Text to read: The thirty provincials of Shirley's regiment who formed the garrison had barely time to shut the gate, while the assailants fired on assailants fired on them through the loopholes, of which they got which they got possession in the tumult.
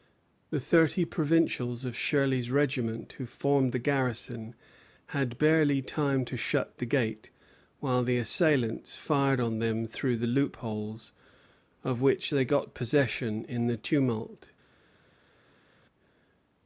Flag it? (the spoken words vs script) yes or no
yes